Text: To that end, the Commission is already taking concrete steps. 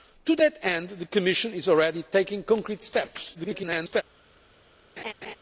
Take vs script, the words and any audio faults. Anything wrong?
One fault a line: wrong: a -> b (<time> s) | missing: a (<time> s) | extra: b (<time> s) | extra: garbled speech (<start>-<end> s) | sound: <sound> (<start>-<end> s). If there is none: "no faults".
extra: garbled speech (3.3-4.0 s)
sound: laugh (5.0-5.4 s)